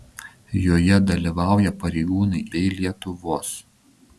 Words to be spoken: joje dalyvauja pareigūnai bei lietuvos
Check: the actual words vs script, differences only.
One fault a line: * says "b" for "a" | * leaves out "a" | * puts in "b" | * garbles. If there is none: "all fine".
all fine